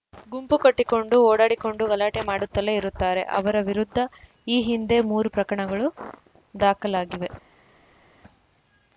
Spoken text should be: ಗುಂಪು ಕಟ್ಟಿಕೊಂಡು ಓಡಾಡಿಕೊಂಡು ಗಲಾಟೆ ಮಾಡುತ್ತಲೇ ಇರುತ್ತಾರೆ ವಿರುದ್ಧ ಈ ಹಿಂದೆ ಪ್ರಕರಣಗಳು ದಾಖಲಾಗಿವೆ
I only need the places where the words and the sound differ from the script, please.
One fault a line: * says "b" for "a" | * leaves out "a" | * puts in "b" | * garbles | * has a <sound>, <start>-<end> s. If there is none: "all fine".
* puts in "ಅವರ"
* puts in "ಮೂರು"